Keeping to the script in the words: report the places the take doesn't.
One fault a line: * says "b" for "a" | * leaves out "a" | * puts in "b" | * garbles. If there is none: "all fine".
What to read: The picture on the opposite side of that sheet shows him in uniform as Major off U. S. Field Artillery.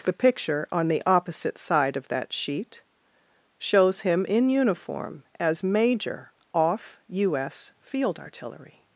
all fine